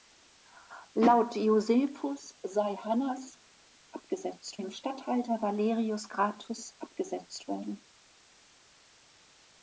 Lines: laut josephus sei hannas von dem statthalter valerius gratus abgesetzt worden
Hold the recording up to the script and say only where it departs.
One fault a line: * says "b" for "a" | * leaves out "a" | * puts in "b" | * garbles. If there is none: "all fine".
* says "abgesetzt" for "von"